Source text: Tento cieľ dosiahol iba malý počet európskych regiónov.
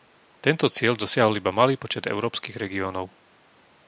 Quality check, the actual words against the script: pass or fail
pass